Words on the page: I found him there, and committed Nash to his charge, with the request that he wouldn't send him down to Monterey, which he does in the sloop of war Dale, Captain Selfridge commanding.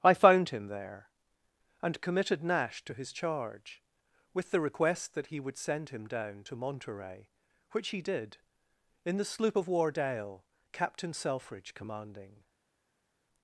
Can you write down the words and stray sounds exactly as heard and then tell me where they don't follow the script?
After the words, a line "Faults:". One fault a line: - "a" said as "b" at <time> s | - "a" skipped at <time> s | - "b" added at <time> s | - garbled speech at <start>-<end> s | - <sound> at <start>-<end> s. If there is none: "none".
I found him there, and committed Nash to his charge, with the request that he would send him down to Monterey, which he did in the sloop of war Dale, Captain Selfridge commanding.
Faults:
- "wouldn't" said as "would" at 5.4 s
- "does" said as "did" at 8.0 s